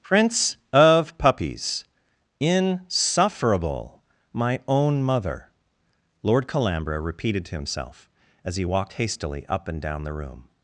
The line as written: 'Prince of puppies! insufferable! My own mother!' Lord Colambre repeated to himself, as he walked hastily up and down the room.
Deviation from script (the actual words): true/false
false